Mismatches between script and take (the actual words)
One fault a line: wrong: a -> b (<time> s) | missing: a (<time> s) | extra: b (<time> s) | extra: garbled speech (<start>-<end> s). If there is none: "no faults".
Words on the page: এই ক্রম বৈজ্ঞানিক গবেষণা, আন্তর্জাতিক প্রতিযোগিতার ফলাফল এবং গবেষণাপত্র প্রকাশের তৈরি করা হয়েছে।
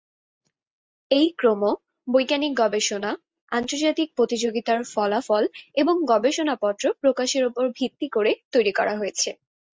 extra: উপর ভিত্তি করে (7.5 s)